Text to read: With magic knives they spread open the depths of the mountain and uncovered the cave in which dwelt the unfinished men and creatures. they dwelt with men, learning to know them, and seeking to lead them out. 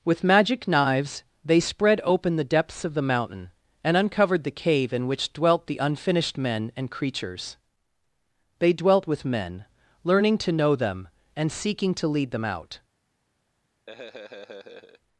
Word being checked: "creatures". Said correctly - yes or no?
yes